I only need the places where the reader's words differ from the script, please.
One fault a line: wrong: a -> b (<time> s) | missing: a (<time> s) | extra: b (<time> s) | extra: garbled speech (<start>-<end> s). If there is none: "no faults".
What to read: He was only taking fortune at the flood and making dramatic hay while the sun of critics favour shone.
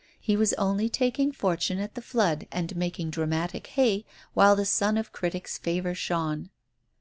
no faults